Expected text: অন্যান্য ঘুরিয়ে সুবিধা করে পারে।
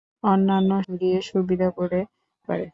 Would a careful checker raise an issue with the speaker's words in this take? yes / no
no